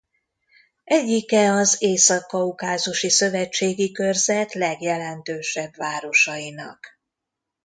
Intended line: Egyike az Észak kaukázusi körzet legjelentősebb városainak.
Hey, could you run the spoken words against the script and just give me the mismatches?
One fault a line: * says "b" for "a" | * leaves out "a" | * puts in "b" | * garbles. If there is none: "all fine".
* puts in "szövetségi"